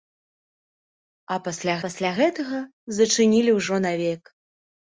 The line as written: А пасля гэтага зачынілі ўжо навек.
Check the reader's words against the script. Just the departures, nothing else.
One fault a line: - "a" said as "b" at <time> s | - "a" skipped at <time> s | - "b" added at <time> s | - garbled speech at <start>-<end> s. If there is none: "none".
- "пасля" added at 1.8 s